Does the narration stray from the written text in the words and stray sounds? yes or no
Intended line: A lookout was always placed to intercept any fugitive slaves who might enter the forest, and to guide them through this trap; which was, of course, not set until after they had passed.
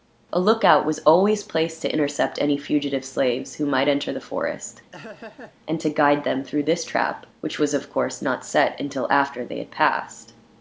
yes